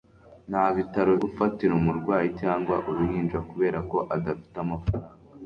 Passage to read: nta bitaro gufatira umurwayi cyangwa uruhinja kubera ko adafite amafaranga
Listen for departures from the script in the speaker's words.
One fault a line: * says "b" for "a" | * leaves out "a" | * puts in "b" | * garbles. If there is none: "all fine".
all fine